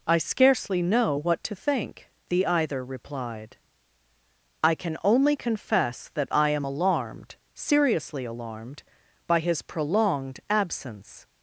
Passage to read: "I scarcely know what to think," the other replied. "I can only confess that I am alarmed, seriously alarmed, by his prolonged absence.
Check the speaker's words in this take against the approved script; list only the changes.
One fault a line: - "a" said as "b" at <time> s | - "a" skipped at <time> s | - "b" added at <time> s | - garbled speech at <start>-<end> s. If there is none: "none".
- "other" said as "either" at 2.5 s